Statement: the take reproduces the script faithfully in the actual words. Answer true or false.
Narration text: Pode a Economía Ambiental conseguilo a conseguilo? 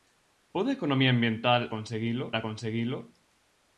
true